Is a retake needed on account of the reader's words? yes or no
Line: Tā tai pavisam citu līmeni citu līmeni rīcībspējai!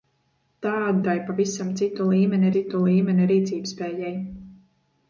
no